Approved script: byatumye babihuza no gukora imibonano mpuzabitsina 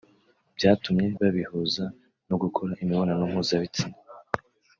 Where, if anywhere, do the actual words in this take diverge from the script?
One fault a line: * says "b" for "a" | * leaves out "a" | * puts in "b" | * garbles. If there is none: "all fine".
all fine